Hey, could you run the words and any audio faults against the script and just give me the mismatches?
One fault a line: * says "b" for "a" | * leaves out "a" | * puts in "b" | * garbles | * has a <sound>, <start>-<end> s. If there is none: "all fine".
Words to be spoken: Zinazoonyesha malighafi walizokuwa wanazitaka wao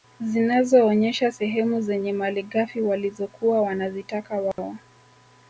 * puts in "sehemu zenye"
* has a dropout, 4.5-4.6 s